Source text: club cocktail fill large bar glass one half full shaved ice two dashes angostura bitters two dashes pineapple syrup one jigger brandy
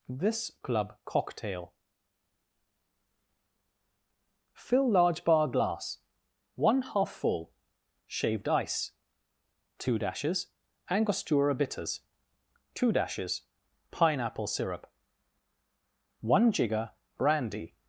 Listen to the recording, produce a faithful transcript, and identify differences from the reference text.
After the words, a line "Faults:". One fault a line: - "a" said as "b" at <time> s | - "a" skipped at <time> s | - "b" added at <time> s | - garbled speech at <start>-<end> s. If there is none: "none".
this club cocktail fill large bar glass one half full shaved ice two dashes angostura bitters two dashes pineapple syrup one jigger brandy
Faults:
- "this" added at 0.1 s